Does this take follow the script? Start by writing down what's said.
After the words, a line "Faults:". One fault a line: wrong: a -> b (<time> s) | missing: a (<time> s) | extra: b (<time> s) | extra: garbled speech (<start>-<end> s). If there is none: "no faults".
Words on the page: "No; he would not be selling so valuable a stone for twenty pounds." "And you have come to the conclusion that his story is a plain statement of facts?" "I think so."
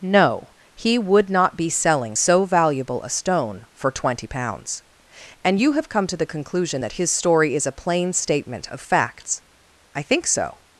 "No; he would not be selling so valuable a stone for twenty pounds." "And you have come to the conclusion that his story is a plain statement of facts?" "I think so."
Faults:
no faults